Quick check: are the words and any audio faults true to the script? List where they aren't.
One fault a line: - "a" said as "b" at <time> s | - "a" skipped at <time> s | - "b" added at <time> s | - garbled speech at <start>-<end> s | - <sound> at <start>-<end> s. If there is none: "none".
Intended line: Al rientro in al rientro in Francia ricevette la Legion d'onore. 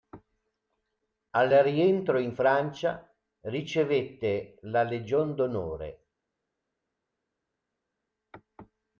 - "al rientro in" skipped at 2.3 s